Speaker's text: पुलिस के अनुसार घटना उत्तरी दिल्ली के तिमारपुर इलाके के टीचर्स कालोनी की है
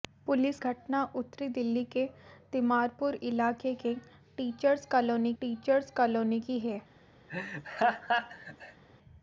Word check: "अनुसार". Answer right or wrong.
wrong